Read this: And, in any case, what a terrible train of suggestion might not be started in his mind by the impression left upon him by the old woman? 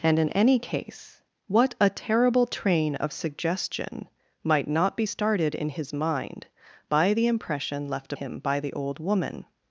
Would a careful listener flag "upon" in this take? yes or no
yes